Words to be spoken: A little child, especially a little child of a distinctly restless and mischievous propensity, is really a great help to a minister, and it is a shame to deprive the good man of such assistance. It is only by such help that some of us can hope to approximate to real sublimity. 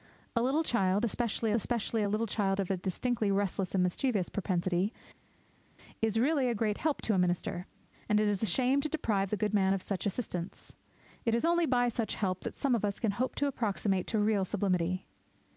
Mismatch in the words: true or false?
true